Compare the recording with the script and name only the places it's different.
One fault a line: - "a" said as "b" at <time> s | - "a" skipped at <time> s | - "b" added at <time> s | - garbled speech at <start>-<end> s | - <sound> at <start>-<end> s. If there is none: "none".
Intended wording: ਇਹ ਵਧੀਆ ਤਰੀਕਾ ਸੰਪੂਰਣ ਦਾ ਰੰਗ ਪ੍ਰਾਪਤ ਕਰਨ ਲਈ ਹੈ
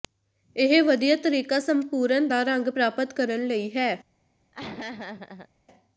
- laugh at 4.5-5.5 s